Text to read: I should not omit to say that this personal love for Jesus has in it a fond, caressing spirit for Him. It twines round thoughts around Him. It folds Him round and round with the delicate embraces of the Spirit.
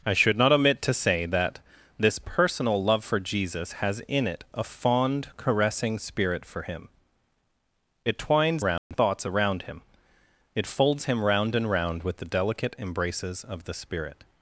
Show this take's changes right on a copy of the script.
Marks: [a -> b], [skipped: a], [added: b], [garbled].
I should not omit to say that this personal love for Jesus has in it a fond, caressing spirit for Him. It twines round thoughts around Him. It folds Him round and round with the delicate embraces of the Spirit.